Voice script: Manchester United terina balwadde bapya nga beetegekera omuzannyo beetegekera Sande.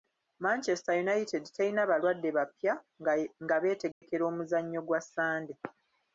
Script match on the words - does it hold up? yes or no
no